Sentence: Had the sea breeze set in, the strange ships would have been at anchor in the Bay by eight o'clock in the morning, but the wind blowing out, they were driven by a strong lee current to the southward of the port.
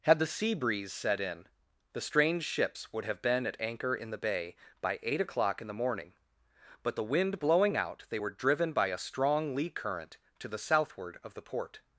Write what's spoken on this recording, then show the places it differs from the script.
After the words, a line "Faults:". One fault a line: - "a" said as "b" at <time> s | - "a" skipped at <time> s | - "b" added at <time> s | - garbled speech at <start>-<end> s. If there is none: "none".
Had the sea breeze set in, the strange ships would have been at anchor in the Bay by eight o'clock in the morning, but the wind blowing out, they were driven by a strong lee current to the southward of the port.
Faults:
none